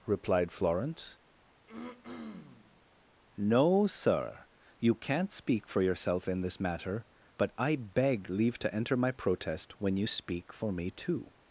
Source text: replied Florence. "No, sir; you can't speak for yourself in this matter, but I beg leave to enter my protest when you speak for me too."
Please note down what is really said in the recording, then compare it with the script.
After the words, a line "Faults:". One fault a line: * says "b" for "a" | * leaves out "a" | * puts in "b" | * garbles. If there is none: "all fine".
replied Florence. "No, sir; you can't speak for yourself in this matter, but I beg leave to enter my protest when you speak for me too."
Faults:
all fine